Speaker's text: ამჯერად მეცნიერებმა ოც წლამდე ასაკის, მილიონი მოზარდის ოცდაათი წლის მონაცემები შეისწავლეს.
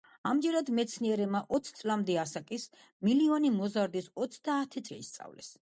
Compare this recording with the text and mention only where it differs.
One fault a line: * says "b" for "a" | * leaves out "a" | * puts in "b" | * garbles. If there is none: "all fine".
* leaves out "წლის მონაცემები"